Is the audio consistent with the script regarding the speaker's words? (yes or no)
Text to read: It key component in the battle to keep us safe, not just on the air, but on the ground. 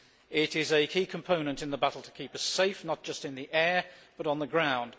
no